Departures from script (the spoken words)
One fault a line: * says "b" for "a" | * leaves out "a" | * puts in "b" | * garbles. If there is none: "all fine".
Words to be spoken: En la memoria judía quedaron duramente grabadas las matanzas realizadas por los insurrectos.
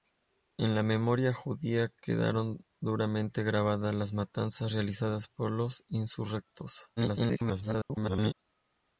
* garbles